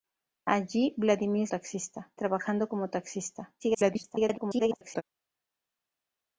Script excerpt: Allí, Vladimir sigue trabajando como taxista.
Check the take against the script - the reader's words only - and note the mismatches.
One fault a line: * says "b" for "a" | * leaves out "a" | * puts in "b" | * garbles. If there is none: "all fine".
* says "taxista" for "sigue"
* garbles